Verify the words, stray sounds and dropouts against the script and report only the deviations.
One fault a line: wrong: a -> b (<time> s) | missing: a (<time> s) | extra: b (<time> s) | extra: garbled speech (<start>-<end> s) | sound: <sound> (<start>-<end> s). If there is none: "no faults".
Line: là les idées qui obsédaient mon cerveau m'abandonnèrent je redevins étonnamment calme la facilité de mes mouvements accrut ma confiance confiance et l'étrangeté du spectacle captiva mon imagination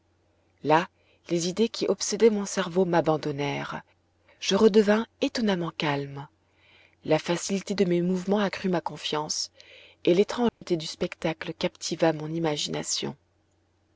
missing: confiance (9.5 s)
sound: dropout (10.5-10.6 s)